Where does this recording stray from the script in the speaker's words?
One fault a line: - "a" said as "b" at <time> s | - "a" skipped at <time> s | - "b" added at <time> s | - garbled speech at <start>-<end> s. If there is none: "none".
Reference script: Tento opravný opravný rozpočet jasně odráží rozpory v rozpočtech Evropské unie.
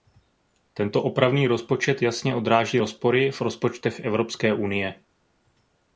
- "opravný" skipped at 1.5 s